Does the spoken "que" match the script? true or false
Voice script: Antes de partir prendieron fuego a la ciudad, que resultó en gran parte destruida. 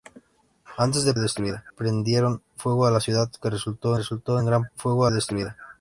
true